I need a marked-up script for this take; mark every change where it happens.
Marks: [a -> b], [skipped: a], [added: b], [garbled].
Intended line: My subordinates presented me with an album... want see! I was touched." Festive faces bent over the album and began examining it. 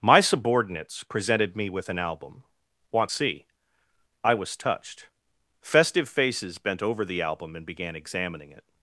My subordinates presented me with an album... want see! I was touched." Festive faces bent over the album and began examining it.